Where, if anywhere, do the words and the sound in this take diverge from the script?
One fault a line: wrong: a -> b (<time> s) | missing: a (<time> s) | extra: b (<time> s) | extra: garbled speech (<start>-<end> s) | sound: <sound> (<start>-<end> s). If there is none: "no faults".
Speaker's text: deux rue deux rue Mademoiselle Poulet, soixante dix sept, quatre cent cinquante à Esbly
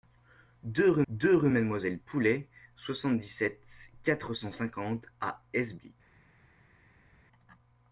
no faults